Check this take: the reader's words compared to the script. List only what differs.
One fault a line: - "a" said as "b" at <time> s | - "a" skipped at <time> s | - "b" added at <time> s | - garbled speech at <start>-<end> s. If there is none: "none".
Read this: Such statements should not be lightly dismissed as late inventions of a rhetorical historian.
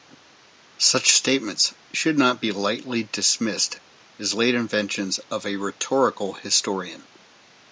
none